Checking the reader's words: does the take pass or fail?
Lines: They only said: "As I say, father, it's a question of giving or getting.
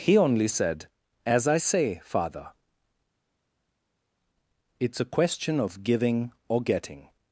fail